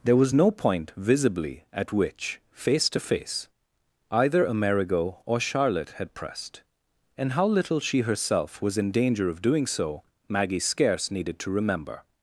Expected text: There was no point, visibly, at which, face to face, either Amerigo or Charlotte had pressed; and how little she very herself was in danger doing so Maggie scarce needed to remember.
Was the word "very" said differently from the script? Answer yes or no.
yes